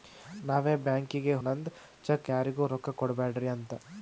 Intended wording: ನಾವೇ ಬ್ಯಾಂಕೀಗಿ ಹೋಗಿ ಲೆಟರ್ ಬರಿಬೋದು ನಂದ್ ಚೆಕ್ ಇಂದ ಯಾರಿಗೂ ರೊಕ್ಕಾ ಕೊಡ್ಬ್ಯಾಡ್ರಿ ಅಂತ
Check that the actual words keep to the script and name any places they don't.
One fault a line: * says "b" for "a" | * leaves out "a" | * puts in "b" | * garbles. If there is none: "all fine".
* leaves out "ಹೋಗಿ ಲೆಟರ್ ಬರಿಬೋದು"
* leaves out "ಇಂದ"